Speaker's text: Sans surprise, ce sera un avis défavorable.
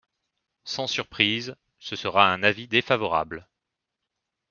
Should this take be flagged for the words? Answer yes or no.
no